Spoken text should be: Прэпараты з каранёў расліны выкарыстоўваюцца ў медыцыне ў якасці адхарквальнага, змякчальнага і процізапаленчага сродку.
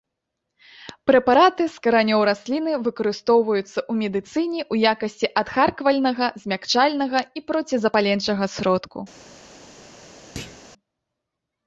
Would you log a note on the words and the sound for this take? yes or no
yes